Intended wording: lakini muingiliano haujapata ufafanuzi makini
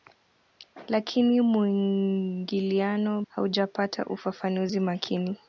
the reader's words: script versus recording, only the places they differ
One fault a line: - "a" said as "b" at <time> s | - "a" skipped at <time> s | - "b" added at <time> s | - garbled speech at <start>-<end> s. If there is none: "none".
none